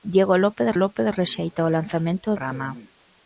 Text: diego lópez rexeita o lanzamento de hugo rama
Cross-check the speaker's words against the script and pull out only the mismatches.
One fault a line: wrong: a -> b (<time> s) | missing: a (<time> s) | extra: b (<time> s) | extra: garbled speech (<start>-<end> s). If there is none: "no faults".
extra: lópez (0.7 s)
missing: de hugo (2.4 s)